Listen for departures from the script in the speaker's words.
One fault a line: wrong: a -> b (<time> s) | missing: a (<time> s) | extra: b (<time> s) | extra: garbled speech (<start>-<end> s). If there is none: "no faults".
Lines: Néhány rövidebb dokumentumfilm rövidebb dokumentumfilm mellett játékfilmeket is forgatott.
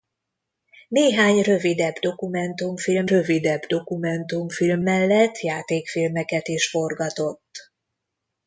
no faults